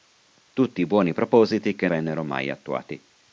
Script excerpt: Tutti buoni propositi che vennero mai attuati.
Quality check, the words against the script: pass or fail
pass